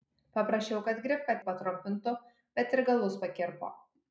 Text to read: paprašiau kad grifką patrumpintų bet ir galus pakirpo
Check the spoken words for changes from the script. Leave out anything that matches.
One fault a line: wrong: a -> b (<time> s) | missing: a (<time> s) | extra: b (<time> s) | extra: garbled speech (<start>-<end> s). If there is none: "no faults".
no faults